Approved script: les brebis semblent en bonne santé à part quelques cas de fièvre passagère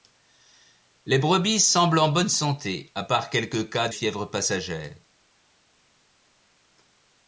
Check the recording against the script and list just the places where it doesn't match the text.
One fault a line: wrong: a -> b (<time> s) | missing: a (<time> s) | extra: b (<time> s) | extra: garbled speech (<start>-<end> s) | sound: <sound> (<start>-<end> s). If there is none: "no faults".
missing: de (3.9 s)